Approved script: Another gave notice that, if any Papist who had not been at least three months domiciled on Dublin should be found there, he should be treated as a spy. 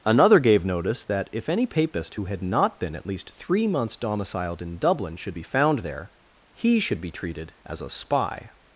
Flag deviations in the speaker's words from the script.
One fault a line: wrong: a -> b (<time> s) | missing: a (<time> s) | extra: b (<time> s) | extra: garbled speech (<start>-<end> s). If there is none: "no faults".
wrong: on -> in (4.6 s)